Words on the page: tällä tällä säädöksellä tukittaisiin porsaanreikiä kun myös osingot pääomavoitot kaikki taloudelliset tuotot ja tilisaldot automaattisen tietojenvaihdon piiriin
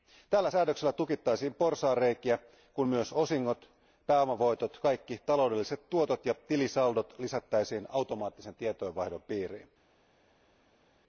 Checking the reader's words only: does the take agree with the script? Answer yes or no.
no